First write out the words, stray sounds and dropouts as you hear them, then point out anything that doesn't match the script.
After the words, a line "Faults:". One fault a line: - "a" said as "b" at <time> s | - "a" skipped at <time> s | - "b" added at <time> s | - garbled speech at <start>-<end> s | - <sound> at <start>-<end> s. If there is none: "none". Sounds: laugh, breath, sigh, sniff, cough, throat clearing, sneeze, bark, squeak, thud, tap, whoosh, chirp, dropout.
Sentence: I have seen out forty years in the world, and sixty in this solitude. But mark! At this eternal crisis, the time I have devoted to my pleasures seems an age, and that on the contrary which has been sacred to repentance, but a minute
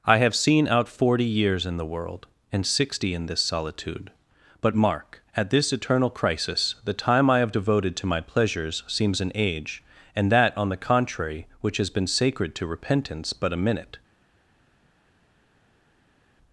I have seen out forty years in the world, and sixty in this solitude. But mark! At this eternal crisis, the time I have devoted to my pleasures seems an age, and that on the contrary which has been sacred to repentance, but a minute
Faults:
none